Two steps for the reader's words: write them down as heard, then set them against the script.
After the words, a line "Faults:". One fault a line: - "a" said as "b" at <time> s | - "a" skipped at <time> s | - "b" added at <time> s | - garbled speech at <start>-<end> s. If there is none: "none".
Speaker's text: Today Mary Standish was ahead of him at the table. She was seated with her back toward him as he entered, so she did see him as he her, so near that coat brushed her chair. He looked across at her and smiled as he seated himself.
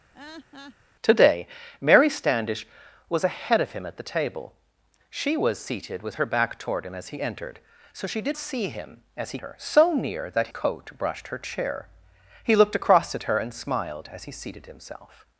Today Mary Standish was ahead of him at the table. She was seated with her back toward him as he entered, so she did see him as he her, so near that coat brushed her chair. He looked across at her and smiled as he seated himself.
Faults:
none